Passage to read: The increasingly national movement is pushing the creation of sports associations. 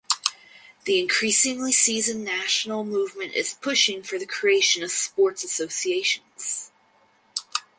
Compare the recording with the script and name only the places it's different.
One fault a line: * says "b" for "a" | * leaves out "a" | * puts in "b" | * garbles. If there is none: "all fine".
* puts in "seasoned"
* puts in "for"